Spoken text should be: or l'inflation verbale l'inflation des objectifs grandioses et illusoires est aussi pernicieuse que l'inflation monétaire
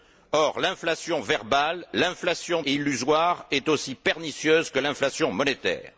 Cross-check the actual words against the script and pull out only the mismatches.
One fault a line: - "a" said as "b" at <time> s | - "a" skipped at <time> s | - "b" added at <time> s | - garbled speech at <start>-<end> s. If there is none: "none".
- "des objectifs grandioses" skipped at 2.6 s